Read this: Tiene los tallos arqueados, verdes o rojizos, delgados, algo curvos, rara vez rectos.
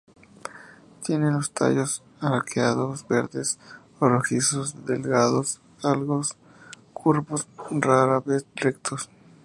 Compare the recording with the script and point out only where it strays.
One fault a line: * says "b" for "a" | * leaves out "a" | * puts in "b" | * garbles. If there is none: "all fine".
all fine